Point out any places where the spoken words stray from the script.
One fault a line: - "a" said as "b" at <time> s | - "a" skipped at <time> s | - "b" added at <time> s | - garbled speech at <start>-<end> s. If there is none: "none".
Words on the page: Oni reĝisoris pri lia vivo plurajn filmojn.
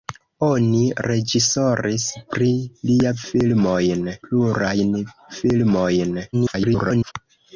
- "vivo" said as "filmojn" at 3.3 s
- garbled speech at 6.3-7.1 s